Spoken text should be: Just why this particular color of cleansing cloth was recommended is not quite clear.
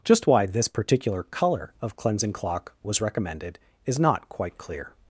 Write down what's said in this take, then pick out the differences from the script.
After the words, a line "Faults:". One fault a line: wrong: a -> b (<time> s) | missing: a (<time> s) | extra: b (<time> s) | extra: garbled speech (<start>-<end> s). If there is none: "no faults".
Just why this particular color of cleansing clock was recommended is not quite clear.
Faults:
wrong: cloth -> clock (2.3 s)